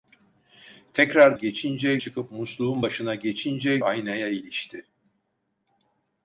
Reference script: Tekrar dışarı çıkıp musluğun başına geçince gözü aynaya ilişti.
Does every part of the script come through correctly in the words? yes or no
no